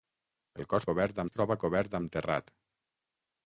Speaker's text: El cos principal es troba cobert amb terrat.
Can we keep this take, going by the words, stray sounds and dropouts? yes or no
no